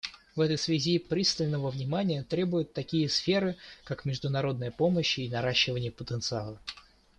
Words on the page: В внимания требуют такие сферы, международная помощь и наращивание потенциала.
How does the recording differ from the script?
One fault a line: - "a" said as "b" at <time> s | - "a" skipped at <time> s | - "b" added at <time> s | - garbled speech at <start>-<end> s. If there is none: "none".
- "этой связи пристального" added at 0.4 s
- "как" added at 3.8 s